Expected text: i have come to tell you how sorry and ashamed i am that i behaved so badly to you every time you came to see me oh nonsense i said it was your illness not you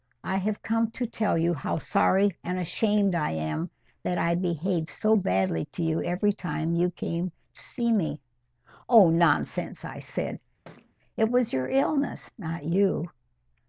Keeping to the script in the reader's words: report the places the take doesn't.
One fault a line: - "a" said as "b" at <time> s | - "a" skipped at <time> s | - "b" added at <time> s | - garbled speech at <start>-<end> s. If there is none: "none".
none